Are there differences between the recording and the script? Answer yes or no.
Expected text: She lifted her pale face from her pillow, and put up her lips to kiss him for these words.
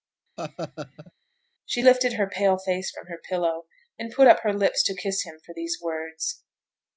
no